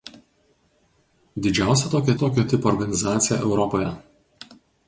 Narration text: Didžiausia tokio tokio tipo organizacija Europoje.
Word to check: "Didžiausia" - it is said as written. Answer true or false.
true